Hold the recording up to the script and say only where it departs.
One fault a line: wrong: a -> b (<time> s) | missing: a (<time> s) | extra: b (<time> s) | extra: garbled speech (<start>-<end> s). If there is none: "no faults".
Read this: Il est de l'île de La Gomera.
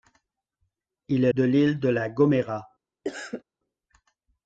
no faults